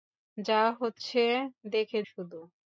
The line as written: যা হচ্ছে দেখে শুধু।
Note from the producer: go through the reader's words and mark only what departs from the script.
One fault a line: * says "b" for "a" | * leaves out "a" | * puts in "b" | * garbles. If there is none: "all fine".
all fine